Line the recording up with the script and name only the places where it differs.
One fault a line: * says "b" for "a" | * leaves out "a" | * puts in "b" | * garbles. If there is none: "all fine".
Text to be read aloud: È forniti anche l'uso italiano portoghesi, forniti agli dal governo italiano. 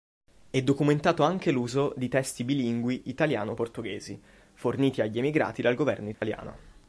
* says "documentato" for "forniti"
* puts in "di testi bilingui"
* puts in "emigrati"